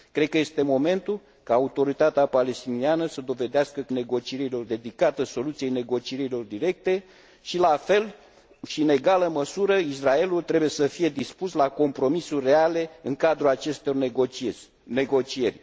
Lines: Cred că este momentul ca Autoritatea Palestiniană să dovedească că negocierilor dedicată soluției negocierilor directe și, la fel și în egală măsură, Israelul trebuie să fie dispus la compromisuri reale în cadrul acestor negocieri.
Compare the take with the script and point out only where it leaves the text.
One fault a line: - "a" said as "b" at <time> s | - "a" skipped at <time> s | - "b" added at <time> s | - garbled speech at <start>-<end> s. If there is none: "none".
none